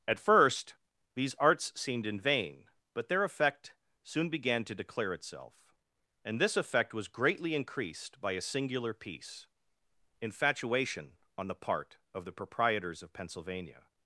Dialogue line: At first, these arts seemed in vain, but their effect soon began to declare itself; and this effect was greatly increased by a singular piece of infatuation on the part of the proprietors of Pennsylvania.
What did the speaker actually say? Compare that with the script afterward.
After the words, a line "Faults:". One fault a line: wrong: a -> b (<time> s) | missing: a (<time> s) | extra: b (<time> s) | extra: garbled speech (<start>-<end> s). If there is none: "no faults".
At first, these arts seemed in vain, but their effect soon began to declare itself; and this effect was greatly increased by a singular piece infatuation on the part of the proprietors of Pennsylvania.
Faults:
missing: of (9.5 s)